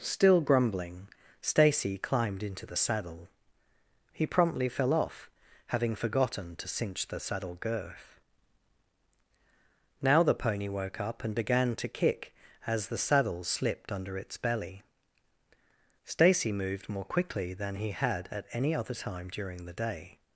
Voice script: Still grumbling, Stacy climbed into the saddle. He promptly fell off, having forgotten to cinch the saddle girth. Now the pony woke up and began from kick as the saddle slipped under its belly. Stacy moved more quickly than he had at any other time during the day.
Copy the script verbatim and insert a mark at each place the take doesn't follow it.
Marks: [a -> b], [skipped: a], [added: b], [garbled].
Still grumbling, Stacy climbed into the saddle. He promptly fell off, having forgotten to cinch the saddle girth. Now the pony woke up and began [from -> to] kick as the saddle slipped under its belly. Stacy moved more quickly than he had at any other time during the day.